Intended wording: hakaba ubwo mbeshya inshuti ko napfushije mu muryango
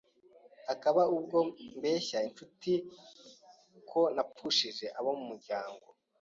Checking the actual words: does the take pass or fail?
fail